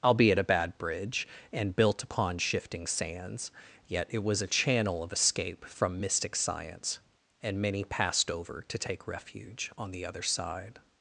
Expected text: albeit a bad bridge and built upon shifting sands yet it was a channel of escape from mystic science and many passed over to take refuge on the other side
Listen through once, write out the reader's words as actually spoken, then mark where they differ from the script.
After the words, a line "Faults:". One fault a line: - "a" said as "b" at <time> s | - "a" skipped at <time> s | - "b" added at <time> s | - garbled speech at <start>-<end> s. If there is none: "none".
albeit a bad bridge and built upon shifting sands yet it was a channel of escape from mystic science and many passed over to take refuge on the other side
Faults:
none